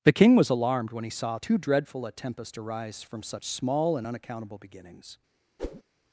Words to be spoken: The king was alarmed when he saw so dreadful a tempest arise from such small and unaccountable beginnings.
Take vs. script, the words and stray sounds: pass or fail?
fail